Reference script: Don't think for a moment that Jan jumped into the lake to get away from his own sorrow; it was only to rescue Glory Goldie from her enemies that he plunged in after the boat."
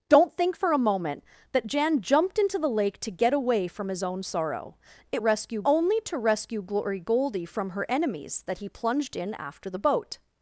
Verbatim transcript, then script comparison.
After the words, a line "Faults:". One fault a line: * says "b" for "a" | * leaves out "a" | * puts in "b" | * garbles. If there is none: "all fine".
Don't think for a moment that Jan jumped into the lake to get away from his own sorrow; it rescue only to rescue Glory Goldie from her enemies that he plunged in after the boat."
Faults:
* says "rescue" for "was"